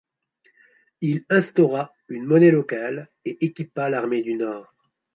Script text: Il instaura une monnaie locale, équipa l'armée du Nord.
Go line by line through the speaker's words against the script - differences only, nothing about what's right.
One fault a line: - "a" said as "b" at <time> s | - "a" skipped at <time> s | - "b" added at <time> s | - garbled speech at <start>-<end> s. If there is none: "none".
- "et" added at 3.2 s